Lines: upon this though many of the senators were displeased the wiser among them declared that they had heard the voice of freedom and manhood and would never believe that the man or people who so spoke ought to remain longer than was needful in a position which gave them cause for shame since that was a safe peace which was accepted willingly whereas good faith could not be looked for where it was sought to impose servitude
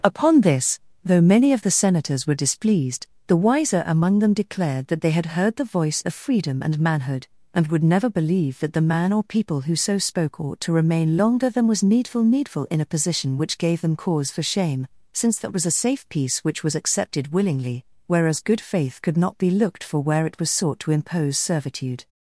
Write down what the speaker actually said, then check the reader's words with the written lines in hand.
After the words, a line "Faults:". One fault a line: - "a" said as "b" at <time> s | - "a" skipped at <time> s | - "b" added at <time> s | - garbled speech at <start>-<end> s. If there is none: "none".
upon this though many of the senators were displeased the wiser among them declared that they had heard the voice of freedom and manhood and would never believe that the man or people who so spoke ought to remain longer than was needful needful in a position which gave them cause for shame since that was a safe peace which was accepted willingly whereas good faith could not be looked for where it was sought to impose servitude
Faults:
- "needful" added at 12.2 s